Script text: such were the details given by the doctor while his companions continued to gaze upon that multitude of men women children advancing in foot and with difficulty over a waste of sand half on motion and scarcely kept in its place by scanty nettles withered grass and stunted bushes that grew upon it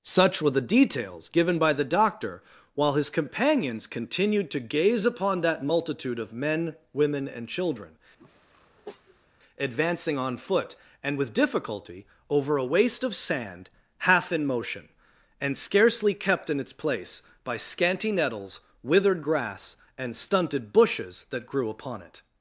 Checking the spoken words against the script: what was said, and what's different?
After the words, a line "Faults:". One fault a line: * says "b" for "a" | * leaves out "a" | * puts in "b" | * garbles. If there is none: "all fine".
such were the details given by the doctor while his companions continued to gaze upon that multitude of men women and children advancing on foot and with difficulty over a waste of sand half in motion and scarcely kept in its place by scanty nettles withered grass and stunted bushes that grew upon it
Faults:
* puts in "and"
* says "on" for "in"
* says "in" for "on"